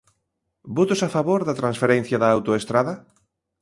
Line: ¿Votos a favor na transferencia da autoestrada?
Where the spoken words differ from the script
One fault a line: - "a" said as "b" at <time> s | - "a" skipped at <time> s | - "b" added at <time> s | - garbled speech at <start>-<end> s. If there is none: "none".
- "na" said as "da" at 1.5 s